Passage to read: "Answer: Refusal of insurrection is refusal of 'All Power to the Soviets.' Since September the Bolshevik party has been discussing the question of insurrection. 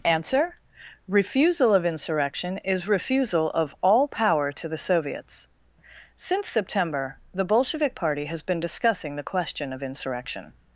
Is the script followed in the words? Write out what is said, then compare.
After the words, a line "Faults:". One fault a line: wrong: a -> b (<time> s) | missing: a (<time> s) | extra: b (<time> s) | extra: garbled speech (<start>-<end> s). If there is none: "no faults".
"Answer: Refusal of insurrection is refusal of 'All Power to the Soviets.' Since September the Bolshevik party has been discussing the question of insurrection.
Faults:
no faults